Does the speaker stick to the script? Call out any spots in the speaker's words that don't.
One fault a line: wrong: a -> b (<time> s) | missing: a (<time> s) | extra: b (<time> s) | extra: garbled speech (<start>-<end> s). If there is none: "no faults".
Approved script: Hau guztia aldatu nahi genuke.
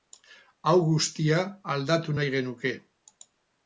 no faults